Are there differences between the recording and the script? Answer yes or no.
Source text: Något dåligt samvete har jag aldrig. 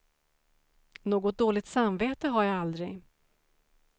no